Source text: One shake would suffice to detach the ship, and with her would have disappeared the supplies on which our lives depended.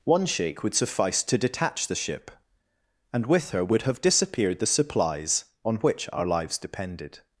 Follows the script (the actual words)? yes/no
yes